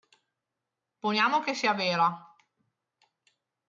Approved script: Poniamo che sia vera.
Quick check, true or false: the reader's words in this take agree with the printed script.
true